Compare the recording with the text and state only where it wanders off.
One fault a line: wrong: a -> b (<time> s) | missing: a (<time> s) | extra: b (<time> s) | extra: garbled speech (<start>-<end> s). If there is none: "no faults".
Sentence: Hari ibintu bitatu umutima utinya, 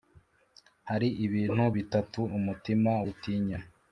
no faults